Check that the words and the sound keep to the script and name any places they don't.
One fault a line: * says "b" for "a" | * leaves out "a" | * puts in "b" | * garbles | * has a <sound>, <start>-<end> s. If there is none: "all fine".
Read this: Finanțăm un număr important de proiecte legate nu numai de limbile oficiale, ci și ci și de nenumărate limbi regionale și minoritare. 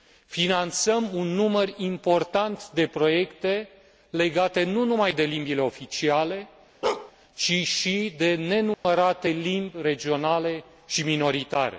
* has a bark, 6.8-7.1 s
* leaves out "ci și"
* has a dropout, 8.7-8.8 s